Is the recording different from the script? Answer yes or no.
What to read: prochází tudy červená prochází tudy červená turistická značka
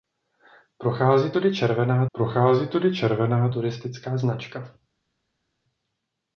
no